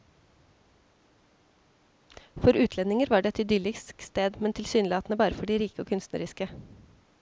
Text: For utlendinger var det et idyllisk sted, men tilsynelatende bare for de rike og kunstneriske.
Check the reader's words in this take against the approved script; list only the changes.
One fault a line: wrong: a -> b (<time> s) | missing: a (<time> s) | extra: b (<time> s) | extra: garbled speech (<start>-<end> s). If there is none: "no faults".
no faults